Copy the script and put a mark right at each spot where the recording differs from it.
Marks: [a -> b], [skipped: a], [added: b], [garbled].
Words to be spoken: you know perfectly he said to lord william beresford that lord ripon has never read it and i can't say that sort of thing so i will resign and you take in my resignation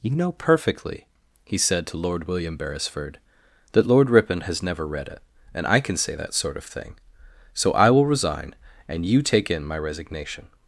you know perfectly he said to lord william beresford that lord ripon has never read it and i [can't -> can] say that sort of thing so i will resign and you take in my resignation